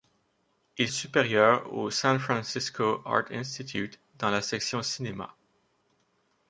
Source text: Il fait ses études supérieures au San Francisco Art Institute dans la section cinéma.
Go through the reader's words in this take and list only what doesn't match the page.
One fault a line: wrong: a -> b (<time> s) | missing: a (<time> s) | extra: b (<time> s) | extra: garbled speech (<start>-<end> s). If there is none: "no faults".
missing: fait ses études (0.9 s)